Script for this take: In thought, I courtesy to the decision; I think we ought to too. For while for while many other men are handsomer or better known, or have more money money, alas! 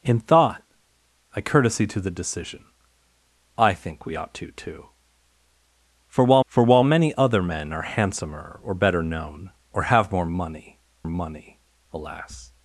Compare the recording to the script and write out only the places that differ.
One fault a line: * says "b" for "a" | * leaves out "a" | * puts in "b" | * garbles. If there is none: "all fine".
all fine